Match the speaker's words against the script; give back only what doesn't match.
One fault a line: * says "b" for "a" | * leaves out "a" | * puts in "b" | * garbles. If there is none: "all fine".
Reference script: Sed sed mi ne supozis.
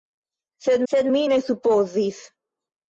all fine